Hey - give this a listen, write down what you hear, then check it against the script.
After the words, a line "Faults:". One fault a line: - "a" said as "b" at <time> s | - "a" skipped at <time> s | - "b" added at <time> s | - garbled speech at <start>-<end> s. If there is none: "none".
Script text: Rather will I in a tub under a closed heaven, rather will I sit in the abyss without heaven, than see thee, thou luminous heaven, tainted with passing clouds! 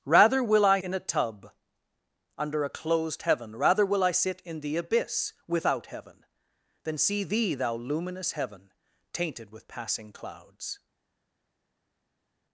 Rather will I in a tub under a closed heaven, rather will I sit in the abyss without heaven, than see thee, thou luminous heaven, tainted with passing clouds!
Faults:
none